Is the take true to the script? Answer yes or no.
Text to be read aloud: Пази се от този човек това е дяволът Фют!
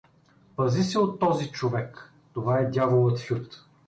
yes